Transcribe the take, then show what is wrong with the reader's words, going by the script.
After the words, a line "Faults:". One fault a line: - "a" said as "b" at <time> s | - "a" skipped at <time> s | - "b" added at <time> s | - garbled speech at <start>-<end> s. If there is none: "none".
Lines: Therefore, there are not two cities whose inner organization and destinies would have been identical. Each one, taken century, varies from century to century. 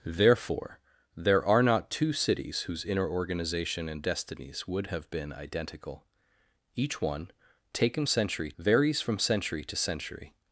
Therefore, there are not two cities whose inner organization and destinies would have been identical. Each one, taken century, varies from century to century.
Faults:
none